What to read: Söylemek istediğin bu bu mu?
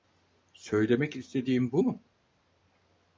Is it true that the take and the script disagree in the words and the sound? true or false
true